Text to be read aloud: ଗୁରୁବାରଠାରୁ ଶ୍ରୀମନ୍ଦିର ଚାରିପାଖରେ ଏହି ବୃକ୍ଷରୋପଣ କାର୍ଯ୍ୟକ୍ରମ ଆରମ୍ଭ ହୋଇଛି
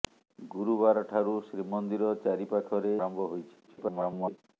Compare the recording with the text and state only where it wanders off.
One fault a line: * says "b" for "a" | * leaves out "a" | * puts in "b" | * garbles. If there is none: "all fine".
* leaves out "ଏହି ବୃକ୍ଷରୋପଣ କାର୍ଯ୍ୟକ୍ରମ"
* garbles